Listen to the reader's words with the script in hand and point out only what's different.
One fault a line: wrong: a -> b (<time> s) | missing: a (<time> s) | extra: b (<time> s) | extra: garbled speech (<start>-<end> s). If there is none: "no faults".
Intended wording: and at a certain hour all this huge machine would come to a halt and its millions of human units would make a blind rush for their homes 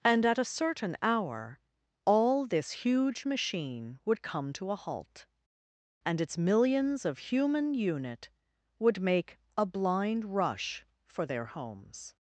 wrong: units -> unit (7.7 s)